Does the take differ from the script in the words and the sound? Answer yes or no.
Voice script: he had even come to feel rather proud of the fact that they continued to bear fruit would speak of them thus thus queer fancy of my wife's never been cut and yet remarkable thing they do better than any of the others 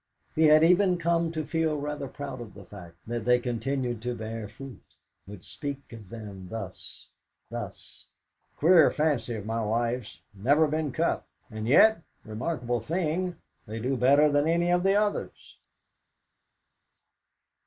no